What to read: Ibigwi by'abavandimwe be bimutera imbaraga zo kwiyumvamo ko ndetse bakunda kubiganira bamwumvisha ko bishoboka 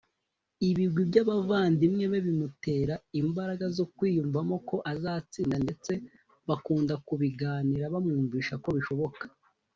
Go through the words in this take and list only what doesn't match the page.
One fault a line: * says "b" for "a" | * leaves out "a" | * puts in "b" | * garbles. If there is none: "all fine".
* puts in "azatsinda"